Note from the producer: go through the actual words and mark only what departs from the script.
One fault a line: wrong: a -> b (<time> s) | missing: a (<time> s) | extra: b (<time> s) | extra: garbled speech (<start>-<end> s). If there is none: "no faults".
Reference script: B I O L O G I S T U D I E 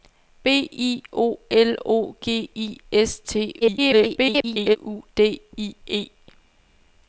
extra: garbled speech (3.6-4.8 s)